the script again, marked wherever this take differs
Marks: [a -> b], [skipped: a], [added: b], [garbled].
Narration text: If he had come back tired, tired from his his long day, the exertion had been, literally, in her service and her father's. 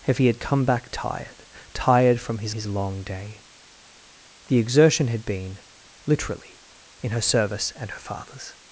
If he had come back tired, tired from his his long day, the exertion had been, literally, in her service and her father's.